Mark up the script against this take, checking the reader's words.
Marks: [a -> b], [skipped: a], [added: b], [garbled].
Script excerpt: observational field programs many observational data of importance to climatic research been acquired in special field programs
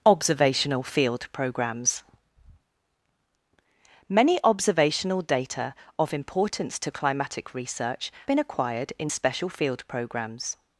observational field programs many observational data of importance to climatic research been acquired in special field programs